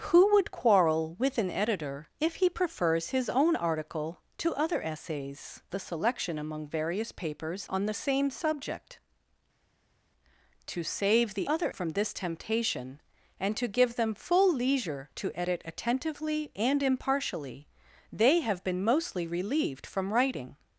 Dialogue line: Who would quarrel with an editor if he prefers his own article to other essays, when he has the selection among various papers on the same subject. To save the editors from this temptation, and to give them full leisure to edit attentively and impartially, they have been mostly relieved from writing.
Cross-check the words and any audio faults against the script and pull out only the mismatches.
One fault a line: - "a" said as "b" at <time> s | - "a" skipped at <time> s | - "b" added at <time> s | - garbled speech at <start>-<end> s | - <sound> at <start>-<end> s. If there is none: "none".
- "when he has" skipped at 5.6 s
- "editors" said as "other" at 11.5 s